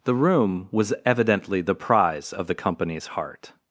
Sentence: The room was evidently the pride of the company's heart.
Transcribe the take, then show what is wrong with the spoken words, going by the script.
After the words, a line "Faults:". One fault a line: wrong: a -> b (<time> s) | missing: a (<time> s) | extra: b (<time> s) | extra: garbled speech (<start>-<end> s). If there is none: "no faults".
The room was evidently the prize of the company's heart.
Faults:
wrong: pride -> prize (1.8 s)